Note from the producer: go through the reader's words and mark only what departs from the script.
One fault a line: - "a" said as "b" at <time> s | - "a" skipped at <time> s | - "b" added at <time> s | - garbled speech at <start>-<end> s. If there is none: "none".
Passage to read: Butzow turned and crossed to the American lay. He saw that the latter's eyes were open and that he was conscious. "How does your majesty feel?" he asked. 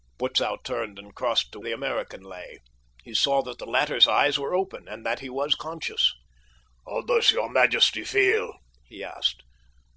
none